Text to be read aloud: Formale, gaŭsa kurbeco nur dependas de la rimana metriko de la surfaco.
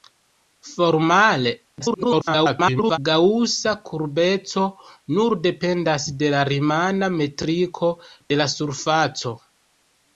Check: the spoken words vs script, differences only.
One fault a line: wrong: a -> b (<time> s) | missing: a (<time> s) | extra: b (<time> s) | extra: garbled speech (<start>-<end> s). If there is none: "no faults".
extra: garbled speech (1.8-3.0 s)